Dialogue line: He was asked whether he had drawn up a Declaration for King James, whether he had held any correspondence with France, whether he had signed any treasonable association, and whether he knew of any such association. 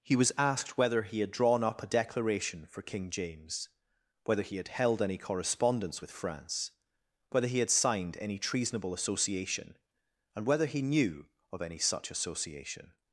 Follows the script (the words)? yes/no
yes